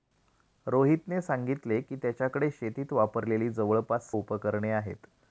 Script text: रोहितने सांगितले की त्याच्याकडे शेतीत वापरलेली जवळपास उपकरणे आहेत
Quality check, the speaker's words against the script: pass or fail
pass